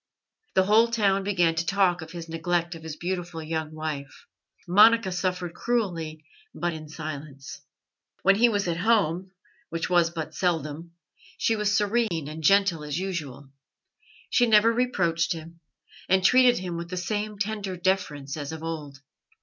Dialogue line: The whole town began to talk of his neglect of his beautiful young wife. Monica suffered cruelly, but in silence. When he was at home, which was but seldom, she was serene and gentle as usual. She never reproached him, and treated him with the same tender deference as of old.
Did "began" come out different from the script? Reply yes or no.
no